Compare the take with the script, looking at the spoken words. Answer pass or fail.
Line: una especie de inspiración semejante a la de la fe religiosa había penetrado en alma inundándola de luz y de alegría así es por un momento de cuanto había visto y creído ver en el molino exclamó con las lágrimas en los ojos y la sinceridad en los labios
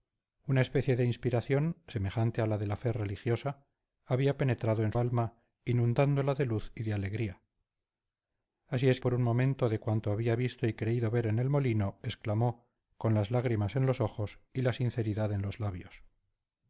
pass